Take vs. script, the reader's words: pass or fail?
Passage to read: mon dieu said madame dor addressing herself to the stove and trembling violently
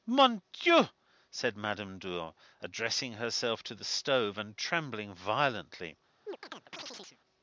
pass